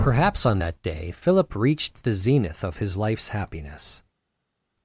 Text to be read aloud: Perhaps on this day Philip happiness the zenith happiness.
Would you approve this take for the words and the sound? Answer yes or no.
no